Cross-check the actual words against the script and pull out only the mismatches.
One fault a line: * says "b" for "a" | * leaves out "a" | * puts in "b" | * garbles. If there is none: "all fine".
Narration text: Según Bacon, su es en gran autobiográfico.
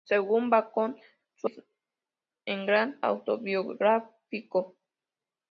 all fine